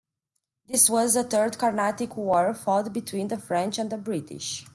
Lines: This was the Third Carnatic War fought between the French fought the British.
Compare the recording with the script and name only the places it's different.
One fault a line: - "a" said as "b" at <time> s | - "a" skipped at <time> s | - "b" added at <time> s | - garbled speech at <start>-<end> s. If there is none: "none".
- "fought" said as "and" at 3.8 s